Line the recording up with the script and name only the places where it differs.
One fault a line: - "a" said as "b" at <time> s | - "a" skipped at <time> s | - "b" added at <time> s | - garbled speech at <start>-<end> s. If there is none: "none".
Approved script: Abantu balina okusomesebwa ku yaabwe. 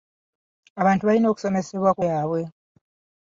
none